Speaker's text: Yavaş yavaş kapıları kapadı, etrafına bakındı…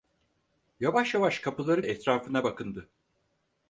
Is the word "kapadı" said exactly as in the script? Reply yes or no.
no